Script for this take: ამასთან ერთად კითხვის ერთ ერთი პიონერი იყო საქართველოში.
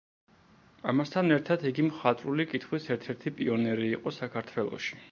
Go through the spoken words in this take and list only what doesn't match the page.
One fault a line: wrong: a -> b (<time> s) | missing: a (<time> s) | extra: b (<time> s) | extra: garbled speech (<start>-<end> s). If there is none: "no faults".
extra: იგი მხატვრული (1.7 s)